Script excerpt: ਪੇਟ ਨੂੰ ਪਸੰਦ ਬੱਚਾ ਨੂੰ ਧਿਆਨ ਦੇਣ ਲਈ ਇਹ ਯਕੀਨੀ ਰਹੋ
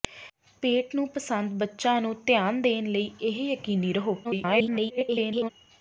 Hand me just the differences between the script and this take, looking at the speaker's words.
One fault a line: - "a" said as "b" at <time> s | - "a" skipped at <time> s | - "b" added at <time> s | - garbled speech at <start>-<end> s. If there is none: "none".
- garbled speech at 4.2-5.5 s